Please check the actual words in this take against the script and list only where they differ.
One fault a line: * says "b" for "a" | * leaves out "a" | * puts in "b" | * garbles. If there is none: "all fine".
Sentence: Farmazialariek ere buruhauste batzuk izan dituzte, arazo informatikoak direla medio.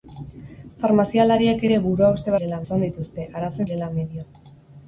* says "direla" for "batzuk"
* leaves out "informatikoak"